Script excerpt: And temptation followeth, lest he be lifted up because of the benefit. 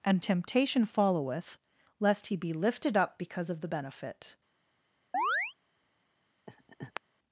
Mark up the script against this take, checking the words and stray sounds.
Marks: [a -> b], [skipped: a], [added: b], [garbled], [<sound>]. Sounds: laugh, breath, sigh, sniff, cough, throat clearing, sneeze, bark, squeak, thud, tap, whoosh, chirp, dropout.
And temptation followeth, lest he be lifted up because of the benefit. [chirp] [laugh]